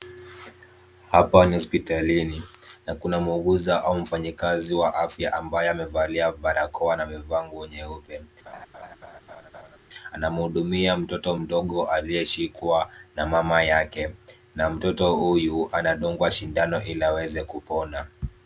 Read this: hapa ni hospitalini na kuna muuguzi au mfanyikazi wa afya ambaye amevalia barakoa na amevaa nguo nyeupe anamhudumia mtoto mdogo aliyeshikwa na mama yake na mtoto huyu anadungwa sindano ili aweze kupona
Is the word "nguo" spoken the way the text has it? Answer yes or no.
yes